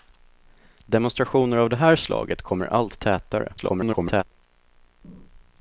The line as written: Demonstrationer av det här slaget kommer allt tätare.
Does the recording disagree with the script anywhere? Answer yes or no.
yes